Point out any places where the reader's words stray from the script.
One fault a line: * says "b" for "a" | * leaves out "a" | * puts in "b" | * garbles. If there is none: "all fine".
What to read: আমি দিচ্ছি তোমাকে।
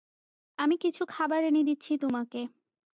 * puts in "কিছু খাবার এনে"